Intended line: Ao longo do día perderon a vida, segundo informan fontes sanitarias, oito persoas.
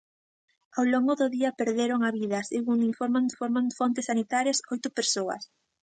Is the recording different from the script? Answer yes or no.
yes